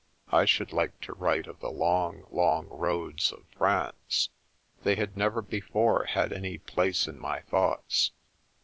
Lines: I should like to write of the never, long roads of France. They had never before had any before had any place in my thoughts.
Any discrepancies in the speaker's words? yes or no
yes